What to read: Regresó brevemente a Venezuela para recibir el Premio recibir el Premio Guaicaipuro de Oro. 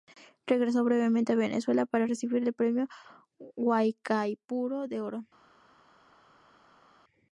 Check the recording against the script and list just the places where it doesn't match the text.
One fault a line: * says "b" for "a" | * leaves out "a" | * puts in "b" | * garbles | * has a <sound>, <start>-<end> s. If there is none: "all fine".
* leaves out "recibir el Premio"